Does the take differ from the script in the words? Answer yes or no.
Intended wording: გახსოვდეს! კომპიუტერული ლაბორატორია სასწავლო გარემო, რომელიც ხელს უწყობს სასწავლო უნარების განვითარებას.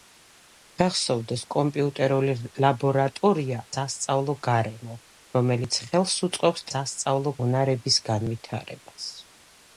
no